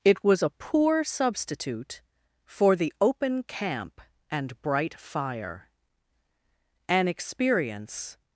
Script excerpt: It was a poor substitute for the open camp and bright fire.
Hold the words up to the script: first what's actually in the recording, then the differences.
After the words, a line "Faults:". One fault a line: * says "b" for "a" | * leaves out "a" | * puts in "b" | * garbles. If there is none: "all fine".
It was a poor substitute for the open camp and bright fire. An experience
Faults:
* puts in "An experience"